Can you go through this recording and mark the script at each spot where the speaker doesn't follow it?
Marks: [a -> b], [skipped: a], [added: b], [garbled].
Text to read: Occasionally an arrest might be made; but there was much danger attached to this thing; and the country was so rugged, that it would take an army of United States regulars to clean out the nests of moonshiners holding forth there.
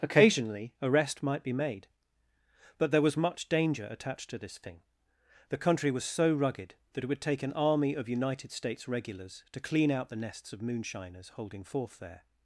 Occasionally [skipped: an] arrest might be made; but there was much danger attached to this thing; [skipped: and] the country was so rugged, that it would take an army of United States regulars to clean out the nests of moonshiners holding forth there.